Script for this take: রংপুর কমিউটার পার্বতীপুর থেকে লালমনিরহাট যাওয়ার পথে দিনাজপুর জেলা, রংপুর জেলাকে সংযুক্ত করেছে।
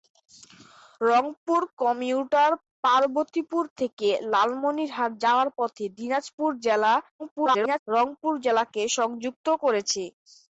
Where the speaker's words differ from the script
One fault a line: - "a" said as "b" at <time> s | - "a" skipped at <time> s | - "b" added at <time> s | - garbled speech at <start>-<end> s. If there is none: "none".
- garbled speech at 7.2-7.8 s